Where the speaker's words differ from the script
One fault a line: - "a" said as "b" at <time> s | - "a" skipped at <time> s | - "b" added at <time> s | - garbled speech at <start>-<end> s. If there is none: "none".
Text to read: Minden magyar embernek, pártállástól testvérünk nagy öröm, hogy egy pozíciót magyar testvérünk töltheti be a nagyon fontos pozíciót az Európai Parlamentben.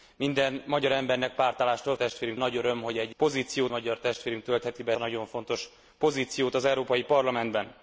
none